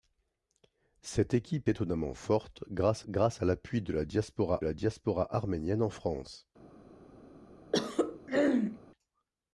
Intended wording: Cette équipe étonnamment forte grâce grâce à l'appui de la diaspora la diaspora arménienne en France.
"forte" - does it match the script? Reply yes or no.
yes